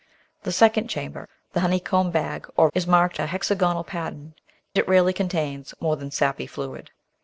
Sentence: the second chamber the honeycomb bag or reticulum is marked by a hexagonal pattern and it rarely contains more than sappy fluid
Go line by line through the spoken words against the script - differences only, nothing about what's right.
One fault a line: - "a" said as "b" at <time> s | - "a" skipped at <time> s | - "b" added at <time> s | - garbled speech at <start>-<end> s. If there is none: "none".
- "reticulum" skipped at 2.7 s
- "by" skipped at 3.2 s
- "and" skipped at 4.3 s